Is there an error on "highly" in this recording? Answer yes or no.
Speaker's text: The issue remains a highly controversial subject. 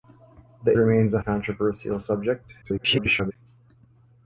yes